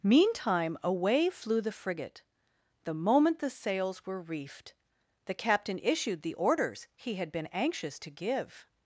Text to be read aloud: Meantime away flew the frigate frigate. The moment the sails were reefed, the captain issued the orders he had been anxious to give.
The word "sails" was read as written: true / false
true